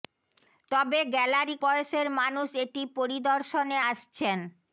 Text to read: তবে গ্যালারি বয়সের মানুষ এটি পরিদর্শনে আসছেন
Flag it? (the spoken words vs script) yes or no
no